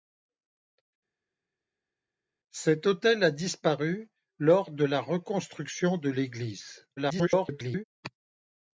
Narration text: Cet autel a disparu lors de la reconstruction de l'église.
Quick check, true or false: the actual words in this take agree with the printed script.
false